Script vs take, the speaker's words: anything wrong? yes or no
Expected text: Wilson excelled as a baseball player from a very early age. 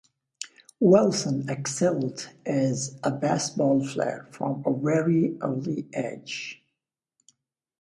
no